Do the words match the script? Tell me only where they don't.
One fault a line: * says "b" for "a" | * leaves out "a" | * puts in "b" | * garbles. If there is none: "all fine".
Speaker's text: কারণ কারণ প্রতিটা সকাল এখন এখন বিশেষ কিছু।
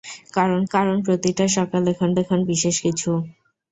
all fine